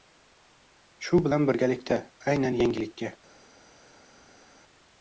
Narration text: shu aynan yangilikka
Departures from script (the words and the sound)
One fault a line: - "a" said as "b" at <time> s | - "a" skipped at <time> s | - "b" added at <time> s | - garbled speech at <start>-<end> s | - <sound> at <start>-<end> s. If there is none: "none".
- "bilan birgalikda" added at 1.3 s